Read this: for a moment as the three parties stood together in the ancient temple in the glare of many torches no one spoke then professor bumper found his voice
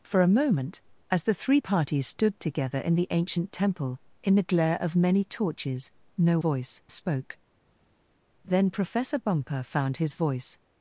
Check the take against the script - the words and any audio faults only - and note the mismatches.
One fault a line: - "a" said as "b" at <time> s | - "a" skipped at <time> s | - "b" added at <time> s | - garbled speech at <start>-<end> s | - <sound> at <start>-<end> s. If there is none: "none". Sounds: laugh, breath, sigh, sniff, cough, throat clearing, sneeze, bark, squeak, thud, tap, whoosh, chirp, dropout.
- "one" said as "voice" at 6.4 s